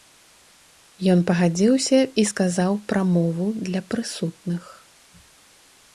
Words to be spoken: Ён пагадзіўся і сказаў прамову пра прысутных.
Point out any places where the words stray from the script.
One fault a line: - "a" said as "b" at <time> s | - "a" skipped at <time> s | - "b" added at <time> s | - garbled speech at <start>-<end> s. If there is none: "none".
- "пра" said as "для" at 3.7 s